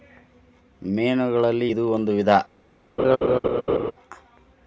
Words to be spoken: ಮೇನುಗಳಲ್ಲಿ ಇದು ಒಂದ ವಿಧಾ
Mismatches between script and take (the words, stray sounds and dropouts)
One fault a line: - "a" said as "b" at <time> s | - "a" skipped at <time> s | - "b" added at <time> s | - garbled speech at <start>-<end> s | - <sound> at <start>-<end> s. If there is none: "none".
- laugh at 3.0-3.9 s